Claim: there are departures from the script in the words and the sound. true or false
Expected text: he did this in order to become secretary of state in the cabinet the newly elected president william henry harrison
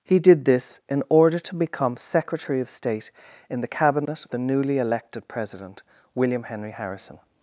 false